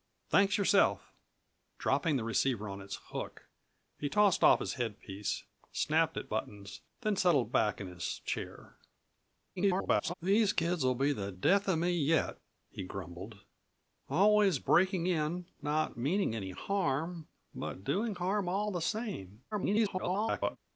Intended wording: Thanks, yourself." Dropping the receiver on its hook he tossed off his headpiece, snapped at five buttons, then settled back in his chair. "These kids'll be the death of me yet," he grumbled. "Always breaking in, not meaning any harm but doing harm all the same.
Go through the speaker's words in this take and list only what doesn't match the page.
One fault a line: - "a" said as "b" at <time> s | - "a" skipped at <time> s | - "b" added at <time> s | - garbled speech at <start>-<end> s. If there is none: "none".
- "five" skipped at 6.3 s
- garbled speech at 9.6-10.1 s
- garbled speech at 19.5-20.6 s